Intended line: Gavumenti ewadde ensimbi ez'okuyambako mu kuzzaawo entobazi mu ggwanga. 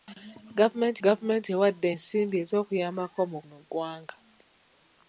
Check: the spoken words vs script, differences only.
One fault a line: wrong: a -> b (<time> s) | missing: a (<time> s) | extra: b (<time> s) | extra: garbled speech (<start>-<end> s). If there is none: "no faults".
extra: gavumenti (1.0 s)
missing: kuzzaawo entobazi (3.4 s)